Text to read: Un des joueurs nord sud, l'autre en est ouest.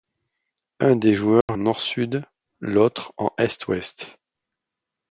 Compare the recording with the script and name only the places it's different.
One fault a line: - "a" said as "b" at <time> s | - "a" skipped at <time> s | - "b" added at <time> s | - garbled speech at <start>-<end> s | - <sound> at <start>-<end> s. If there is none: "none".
- dropout at 1.4-1.5 s